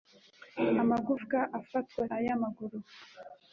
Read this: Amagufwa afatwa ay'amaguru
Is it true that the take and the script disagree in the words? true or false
false